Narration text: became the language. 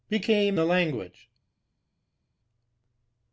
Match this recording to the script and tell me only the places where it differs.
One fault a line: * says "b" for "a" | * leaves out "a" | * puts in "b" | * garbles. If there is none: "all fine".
all fine